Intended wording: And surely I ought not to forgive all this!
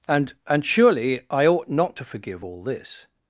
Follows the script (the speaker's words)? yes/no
no